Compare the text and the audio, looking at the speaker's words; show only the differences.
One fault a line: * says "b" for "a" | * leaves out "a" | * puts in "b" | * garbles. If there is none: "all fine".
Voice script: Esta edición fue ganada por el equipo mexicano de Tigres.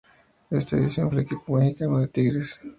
* leaves out "fue ganada por"